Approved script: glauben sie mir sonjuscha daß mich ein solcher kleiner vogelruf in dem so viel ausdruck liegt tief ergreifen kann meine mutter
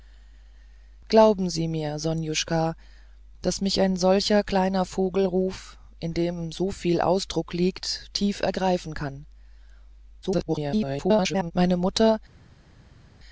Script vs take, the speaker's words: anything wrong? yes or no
yes